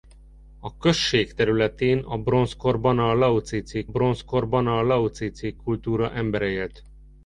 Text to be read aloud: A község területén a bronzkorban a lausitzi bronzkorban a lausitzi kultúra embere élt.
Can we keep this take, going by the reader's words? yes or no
yes